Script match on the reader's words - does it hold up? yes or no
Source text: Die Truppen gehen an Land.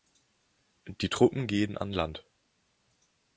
yes